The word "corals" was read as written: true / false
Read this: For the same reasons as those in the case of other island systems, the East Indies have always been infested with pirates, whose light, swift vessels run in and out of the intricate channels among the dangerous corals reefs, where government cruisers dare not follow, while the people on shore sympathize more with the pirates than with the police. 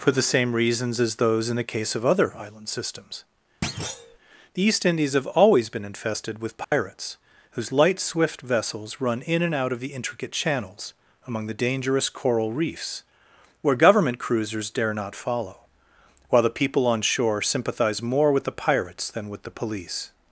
false